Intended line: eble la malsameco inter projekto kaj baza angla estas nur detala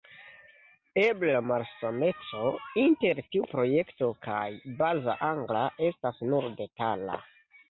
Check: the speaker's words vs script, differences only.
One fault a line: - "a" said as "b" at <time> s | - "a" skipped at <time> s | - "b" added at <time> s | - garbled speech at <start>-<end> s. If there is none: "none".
- "tiu" added at 3.3 s